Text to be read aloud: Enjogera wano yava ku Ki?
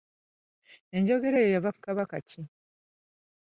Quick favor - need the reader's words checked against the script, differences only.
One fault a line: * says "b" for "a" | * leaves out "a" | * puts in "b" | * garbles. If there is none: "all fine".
* says "eyo" for "wano"
* puts in "Kabaka"